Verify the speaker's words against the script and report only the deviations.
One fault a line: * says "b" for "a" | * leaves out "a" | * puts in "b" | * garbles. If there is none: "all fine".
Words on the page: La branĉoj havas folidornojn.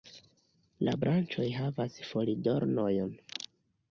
all fine